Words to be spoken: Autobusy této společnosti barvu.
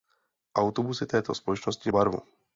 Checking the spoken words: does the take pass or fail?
pass